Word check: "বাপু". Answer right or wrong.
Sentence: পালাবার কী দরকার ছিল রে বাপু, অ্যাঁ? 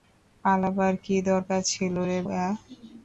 wrong